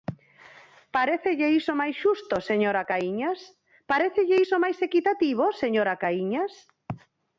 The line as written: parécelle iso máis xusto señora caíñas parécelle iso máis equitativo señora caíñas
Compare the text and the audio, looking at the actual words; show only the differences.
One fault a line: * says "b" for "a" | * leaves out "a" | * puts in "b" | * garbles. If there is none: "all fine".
all fine